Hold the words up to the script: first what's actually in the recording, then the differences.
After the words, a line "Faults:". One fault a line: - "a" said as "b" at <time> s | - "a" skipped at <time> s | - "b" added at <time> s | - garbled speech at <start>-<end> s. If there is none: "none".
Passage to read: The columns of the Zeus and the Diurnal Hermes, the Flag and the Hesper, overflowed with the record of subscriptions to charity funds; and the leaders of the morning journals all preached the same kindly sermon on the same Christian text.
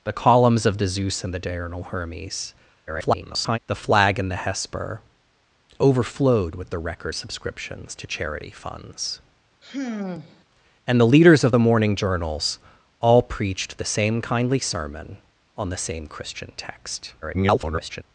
The columns of the Zeus and the Diurnal Hermes, [garbled] the Flag and the Hesper, overflowed with the record subscriptions to charity funds; and the leaders of the morning journals all preached the same kindly sermon on the same Christian text. [garbled]
Faults:
- garbled speech at 2.9-3.6 s
- "of" skipped at 7.1 s
- garbled speech at 17.2-18.0 s